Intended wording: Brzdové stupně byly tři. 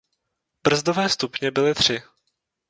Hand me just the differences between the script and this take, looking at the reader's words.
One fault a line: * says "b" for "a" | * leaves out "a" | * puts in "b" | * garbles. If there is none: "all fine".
all fine